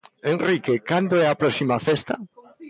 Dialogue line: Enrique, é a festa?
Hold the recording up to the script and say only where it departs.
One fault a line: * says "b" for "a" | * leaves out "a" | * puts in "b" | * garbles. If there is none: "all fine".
* puts in "cando"
* puts in "próxima"